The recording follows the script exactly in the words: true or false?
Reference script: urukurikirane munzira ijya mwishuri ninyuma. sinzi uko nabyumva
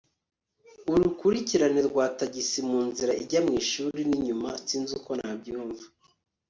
false